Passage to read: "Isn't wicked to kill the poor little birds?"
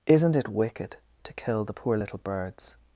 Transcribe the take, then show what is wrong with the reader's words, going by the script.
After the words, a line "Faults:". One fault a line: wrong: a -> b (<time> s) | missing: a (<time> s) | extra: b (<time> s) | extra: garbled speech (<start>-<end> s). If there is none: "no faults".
"Isn't it wicked to kill the poor little birds?"
Faults:
extra: it (0.3 s)